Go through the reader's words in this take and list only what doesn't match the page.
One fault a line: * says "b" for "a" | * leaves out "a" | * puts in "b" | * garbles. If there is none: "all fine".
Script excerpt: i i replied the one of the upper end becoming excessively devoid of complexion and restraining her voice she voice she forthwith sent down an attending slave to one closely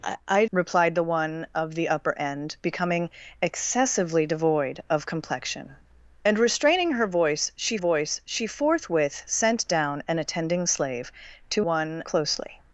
all fine